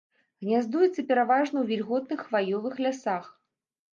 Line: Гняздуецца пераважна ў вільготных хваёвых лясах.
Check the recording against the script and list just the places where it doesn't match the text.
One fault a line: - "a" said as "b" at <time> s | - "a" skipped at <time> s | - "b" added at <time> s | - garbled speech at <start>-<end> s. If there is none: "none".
none